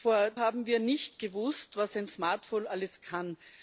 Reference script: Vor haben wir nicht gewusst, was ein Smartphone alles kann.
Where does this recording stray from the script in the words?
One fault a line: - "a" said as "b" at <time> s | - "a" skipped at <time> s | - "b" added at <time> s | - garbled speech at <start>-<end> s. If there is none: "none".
none